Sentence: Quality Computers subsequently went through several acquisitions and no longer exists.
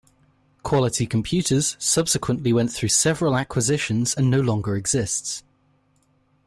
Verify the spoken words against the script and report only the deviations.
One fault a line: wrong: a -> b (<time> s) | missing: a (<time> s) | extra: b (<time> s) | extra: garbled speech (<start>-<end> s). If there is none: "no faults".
no faults